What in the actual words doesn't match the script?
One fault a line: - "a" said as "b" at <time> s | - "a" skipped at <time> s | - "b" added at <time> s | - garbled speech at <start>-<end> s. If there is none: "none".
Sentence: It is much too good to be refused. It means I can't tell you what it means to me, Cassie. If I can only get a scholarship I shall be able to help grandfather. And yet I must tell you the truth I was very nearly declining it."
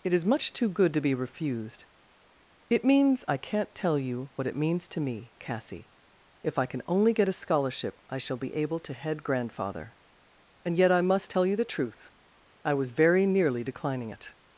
- "help" said as "head" at 8.9 s